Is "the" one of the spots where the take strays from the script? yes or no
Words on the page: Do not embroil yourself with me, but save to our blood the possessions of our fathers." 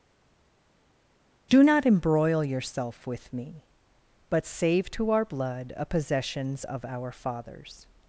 yes